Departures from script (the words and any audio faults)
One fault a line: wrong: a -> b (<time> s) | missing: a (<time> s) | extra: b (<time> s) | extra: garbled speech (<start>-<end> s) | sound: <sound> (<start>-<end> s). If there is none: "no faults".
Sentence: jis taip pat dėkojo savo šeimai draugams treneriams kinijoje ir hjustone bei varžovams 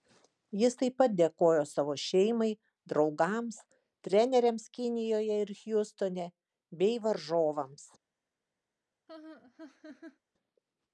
sound: laugh (9.1-10.2 s)